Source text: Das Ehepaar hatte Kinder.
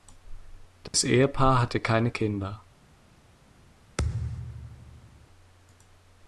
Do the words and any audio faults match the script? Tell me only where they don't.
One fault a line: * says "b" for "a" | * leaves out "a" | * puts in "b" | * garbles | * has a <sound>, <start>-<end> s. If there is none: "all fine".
* has a dropout, 0.9-0.9 s
* puts in "keine"
* has a thud, 4.0-5.3 s